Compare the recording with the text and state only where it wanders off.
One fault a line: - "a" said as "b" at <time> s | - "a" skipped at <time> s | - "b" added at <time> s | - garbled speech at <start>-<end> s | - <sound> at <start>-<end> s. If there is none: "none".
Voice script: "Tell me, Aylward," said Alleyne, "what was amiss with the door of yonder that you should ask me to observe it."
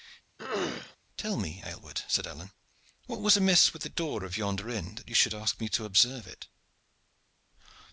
- throat clearing at 0.4-1.0 s
- "inn" added at 4.7 s